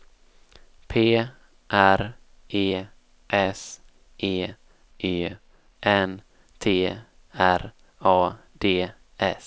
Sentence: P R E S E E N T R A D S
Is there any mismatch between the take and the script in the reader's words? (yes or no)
no